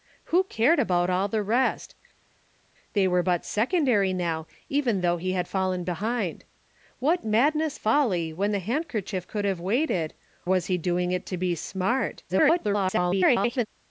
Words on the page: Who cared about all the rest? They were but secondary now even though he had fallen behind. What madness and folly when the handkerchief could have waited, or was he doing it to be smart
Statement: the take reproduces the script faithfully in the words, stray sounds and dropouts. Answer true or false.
false